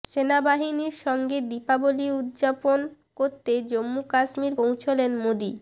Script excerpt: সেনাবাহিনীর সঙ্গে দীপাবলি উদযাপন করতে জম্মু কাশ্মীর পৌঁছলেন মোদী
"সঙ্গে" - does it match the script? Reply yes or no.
yes